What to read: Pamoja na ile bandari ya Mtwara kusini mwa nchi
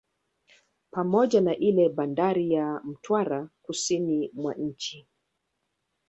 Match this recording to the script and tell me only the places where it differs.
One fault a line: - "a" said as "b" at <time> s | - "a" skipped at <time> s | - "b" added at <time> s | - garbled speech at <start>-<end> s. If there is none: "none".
none